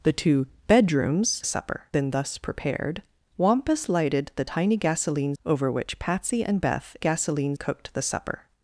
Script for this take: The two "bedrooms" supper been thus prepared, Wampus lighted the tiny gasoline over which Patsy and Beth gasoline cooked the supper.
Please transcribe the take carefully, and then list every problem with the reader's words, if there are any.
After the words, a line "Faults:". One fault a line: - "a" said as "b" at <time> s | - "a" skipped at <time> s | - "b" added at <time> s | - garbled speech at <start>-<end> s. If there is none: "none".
The two "bedrooms" supper been thus prepared, Wampus lighted the tiny gasoline over which Patsy and Beth gasoline cooked the supper.
Faults:
none